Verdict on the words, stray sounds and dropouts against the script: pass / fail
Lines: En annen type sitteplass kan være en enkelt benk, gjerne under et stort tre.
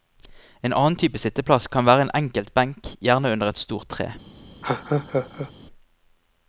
fail